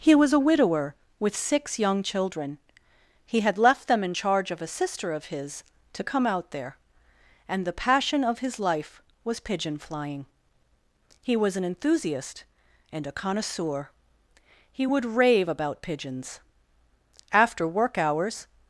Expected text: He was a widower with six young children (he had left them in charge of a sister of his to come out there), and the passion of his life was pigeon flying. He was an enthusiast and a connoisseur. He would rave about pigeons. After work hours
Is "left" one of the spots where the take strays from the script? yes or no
no